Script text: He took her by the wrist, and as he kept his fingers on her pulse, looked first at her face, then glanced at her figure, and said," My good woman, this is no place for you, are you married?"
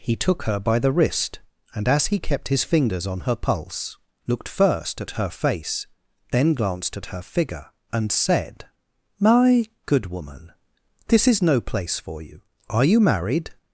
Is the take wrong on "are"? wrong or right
right